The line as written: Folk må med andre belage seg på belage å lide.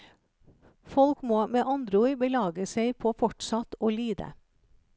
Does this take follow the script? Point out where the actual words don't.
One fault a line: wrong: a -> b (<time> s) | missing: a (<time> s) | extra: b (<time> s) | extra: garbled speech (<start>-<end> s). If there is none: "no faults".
extra: ord (2.0 s)
wrong: belage -> fortsatt (3.2 s)